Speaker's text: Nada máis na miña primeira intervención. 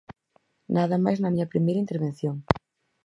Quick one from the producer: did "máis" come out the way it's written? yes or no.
yes